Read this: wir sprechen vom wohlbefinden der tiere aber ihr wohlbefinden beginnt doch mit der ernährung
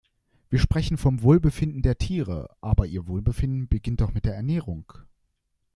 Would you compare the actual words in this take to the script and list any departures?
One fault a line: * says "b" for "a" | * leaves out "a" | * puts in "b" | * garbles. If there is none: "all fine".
all fine